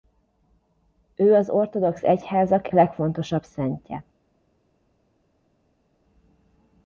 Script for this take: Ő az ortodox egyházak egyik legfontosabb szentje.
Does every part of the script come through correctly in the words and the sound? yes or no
no